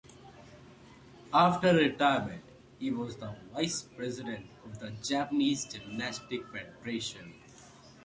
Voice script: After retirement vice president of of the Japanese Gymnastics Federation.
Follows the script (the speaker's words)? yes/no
no